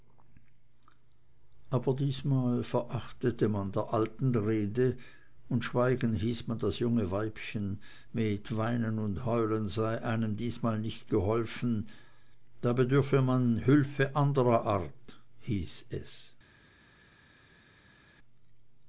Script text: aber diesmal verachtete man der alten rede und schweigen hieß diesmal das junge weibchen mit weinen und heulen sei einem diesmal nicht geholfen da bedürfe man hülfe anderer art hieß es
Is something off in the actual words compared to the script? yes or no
yes